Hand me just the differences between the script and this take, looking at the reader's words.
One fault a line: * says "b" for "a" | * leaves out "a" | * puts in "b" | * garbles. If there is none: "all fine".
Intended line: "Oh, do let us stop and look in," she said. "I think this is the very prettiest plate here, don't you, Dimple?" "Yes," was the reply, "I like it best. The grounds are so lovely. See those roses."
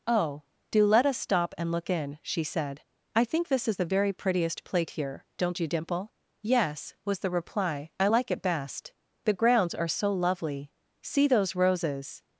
all fine